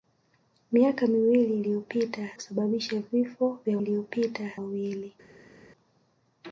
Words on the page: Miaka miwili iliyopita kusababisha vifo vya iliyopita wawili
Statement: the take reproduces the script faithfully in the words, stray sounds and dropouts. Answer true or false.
true